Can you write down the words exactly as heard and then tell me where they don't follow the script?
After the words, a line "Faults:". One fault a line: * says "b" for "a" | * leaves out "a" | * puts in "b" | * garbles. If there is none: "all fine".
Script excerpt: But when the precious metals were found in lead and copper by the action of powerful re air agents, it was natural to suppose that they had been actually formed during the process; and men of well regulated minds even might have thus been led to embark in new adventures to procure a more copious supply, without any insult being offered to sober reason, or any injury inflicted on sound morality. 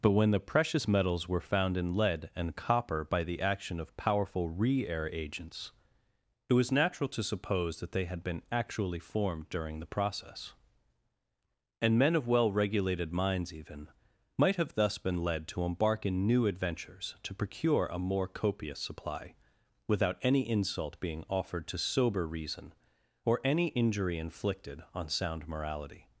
But when the precious metals were found in lead and copper by the action of powerful re air agents, it was natural to suppose that they had been actually formed during the process; and men of well regulated minds even might have thus been led to embark in new adventures to procure a more copious supply, without any insult being offered to sober reason, or any injury inflicted on sound morality.
Faults:
all fine